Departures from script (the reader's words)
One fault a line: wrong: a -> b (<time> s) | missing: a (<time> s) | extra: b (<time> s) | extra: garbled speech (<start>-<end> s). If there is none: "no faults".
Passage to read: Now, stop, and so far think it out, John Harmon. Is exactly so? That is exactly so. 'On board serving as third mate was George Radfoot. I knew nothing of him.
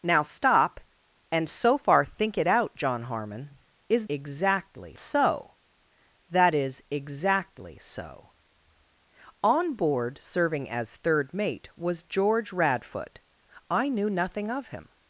no faults